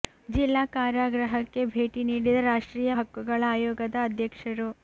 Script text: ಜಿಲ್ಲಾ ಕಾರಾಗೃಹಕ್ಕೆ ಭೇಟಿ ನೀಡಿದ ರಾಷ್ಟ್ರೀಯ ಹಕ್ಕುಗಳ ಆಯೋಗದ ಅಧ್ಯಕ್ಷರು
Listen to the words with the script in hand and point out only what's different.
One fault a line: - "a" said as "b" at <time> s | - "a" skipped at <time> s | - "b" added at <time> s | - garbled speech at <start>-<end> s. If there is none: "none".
none